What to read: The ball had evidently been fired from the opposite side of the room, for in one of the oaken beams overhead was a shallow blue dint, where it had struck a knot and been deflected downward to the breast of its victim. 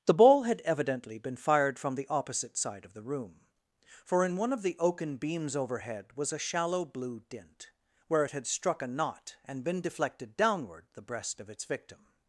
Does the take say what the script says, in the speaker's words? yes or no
no